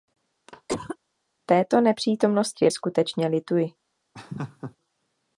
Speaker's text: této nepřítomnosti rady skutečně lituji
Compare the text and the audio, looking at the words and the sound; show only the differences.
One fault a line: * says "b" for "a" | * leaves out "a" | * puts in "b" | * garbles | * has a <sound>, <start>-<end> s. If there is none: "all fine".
* has a cough, 0.5-1.0 s
* leaves out "rady"
* has a laugh, 4.1-4.8 s